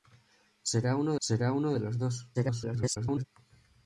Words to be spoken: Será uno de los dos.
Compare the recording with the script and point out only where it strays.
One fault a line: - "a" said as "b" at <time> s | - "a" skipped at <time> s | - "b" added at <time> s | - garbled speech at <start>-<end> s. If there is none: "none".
- "será uno" added at 1.2 s
- garbled speech at 2.3-3.2 s